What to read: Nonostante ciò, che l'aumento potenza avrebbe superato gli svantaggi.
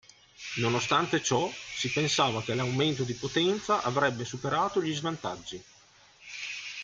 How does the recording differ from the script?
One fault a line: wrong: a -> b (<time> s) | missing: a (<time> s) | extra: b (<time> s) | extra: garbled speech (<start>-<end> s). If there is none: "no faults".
extra: si pensava (1.5 s)
extra: di (3.0 s)